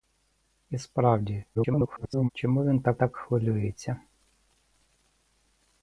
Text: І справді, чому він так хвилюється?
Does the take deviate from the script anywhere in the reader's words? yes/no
yes